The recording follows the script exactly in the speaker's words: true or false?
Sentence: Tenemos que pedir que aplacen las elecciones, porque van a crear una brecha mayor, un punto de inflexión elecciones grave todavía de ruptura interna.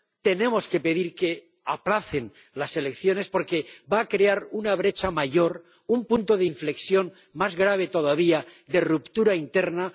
false